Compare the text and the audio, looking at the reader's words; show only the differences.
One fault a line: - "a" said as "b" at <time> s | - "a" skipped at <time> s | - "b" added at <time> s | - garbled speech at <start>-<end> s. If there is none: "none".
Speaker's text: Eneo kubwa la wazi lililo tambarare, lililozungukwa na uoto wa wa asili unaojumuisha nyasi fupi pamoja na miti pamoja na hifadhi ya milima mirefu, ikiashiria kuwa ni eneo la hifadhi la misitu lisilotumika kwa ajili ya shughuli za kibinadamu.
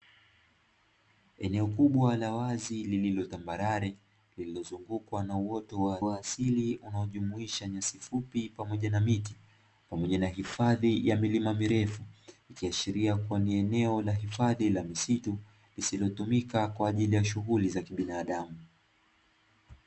none